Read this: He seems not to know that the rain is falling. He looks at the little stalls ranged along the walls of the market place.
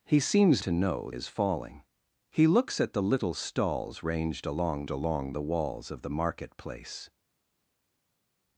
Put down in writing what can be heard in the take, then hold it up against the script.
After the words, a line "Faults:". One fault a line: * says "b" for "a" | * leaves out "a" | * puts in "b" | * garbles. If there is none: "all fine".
He seems to know is falling. He looks at the little stalls ranged along along the walls of the market place.
Faults:
* leaves out "not"
* leaves out "that the rain"
* puts in "along"